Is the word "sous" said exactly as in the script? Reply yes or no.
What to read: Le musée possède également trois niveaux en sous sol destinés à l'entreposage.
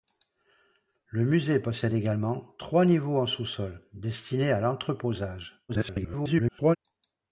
yes